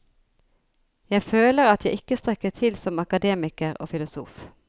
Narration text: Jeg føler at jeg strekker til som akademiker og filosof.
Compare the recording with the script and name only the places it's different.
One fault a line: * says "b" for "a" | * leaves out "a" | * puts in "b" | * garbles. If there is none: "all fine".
* puts in "ikke"